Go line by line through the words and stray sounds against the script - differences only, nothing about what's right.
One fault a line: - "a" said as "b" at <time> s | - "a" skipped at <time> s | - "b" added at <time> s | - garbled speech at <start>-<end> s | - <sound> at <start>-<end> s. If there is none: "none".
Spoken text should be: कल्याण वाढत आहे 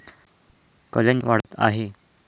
- dropout at 1.4-1.4 s